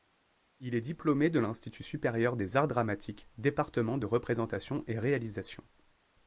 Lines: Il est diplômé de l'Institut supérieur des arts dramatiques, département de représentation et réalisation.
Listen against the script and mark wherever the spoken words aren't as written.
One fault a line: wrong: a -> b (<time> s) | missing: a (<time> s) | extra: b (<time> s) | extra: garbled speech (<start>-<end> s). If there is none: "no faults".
no faults